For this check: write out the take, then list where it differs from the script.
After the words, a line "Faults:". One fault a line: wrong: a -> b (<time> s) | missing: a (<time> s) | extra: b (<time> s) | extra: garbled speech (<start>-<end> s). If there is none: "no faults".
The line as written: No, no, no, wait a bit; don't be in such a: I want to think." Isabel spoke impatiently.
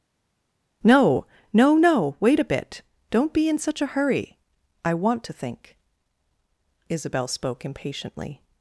No, no, no, wait a bit; don't be in such a hurry: I want to think." Isabel spoke impatiently.
Faults:
extra: hurry (3.9 s)